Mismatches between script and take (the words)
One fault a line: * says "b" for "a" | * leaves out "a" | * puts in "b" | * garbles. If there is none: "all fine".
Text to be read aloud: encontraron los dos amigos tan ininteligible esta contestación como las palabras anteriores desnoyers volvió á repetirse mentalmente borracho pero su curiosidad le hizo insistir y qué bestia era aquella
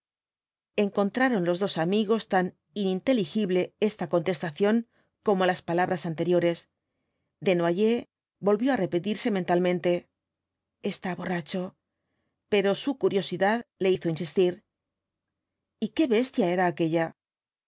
* puts in "está"